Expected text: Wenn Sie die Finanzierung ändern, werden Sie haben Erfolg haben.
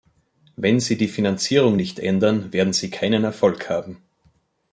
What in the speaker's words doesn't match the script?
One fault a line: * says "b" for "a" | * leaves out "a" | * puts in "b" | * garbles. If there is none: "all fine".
* puts in "nicht"
* says "keinen" for "haben"